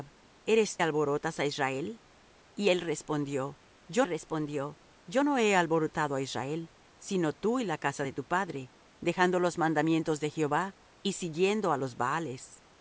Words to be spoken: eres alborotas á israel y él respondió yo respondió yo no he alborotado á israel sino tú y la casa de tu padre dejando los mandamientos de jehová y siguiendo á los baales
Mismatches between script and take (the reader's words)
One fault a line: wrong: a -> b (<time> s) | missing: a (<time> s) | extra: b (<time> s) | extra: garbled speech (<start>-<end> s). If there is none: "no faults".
no faults